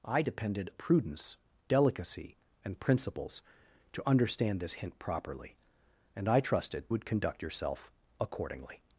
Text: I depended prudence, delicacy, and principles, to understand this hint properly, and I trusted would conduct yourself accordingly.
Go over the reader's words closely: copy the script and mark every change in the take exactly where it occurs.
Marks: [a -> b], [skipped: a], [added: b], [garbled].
I depended prudence, delicacy, and principles, to understand this hint properly, and I trusted would conduct yourself accordingly.